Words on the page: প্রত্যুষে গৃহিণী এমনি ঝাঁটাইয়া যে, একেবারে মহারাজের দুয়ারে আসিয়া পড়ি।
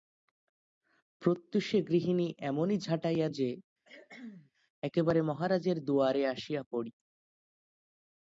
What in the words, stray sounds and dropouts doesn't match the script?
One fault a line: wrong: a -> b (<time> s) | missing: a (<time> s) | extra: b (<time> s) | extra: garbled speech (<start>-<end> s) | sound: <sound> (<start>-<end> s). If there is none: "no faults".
sound: cough (3.8-4.5 s)